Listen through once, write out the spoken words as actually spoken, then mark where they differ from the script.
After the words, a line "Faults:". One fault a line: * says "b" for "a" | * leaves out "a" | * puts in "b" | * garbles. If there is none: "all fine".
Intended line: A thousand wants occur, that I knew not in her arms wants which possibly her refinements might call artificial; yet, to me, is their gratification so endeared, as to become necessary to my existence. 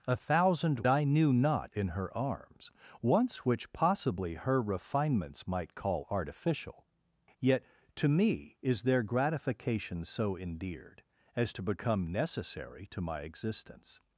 A thousand I knew not in her arms wants which possibly her refinements might call artificial; yet, to me, is their gratification so endeared, as to become necessary to my existence.
Faults:
* leaves out "wants occur that"